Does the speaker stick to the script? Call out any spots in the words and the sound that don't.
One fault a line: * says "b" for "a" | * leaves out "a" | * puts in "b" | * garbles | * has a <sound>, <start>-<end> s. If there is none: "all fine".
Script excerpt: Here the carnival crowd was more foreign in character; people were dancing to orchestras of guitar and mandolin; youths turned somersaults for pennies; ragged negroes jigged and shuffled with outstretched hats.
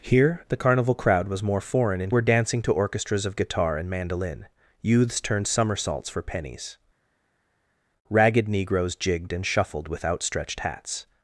* leaves out "character people"